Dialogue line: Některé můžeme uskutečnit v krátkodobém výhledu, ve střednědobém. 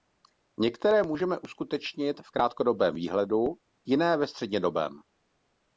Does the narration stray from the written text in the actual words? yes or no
yes